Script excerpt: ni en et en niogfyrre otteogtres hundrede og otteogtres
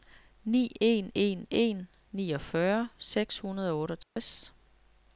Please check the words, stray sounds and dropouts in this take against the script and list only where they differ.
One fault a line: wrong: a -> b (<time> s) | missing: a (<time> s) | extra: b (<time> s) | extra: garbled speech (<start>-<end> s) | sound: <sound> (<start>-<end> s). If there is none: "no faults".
wrong: et -> en (1.1 s)
wrong: otteogtres -> seks (3.0 s)
sound: dropout (4.0-4.2 s)